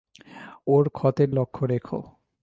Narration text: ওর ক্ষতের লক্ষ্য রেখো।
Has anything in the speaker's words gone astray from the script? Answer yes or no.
no